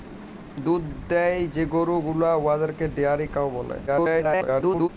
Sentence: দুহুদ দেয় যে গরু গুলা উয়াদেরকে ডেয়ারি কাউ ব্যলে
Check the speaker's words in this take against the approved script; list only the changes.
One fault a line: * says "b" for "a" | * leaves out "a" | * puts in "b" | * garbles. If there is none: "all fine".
* garbles